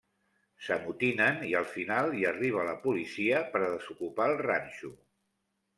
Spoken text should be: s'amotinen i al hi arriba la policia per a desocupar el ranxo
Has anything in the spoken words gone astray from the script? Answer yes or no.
yes